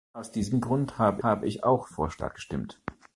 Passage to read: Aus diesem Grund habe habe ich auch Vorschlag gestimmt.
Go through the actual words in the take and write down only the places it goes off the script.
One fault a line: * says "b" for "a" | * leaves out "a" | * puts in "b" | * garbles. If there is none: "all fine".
all fine